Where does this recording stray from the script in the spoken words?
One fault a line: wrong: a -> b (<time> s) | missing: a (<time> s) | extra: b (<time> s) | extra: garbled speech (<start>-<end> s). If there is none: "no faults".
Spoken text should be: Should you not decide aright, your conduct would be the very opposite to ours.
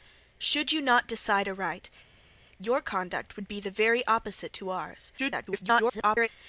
extra: garbled speech (5.2-6.3 s)